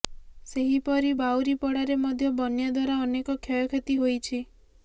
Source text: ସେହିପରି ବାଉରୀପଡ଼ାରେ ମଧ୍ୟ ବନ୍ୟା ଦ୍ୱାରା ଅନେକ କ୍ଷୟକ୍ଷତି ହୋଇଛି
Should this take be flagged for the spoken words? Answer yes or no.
no